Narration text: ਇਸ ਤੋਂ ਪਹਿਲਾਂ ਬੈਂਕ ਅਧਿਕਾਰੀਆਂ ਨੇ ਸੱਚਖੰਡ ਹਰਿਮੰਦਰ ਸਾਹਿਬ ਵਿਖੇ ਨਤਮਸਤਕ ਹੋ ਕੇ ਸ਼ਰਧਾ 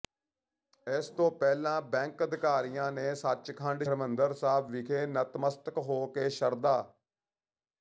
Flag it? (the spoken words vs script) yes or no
no